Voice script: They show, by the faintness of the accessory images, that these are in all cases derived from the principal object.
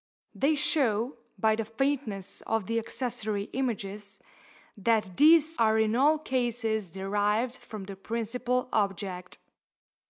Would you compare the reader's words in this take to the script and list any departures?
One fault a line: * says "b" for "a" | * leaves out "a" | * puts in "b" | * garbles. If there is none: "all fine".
all fine